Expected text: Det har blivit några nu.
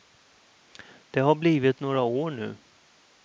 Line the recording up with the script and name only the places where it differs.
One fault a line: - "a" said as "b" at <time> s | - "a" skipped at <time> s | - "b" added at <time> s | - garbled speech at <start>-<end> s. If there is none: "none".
- "år" added at 2.0 s